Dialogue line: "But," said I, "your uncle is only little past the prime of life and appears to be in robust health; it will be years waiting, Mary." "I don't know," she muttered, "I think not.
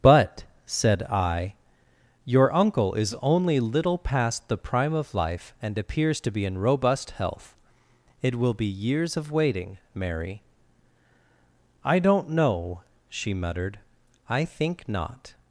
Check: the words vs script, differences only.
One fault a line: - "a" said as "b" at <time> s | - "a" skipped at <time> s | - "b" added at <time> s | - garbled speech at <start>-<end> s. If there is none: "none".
- "of" added at 9.2 s